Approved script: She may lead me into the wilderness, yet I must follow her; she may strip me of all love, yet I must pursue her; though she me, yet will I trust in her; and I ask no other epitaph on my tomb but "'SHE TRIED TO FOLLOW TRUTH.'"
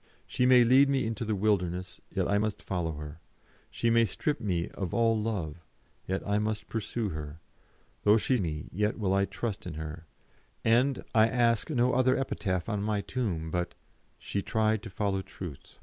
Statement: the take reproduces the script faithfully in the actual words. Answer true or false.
true